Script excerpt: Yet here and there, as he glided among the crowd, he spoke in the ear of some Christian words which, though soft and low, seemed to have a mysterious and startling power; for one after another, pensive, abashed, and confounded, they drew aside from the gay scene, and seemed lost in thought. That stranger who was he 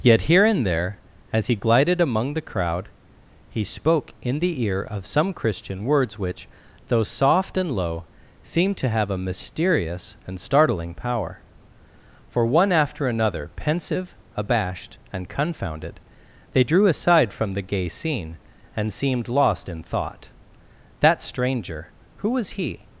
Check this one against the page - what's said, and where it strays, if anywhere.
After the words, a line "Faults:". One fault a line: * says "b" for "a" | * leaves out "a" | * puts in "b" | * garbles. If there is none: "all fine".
Yet here and there, as he glided among the crowd, he spoke in the ear of some Christian words which, though soft and low, seemed to have a mysterious and startling power; for one after another, pensive, abashed, and confounded, they drew aside from the gay scene, and seemed lost in thought. That stranger who was he
Faults:
all fine